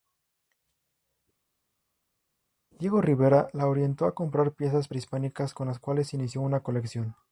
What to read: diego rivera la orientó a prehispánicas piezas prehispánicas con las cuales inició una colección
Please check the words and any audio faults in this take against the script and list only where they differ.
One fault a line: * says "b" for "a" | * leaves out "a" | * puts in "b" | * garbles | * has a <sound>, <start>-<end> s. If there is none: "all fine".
* says "comprar" for "prehispánicas"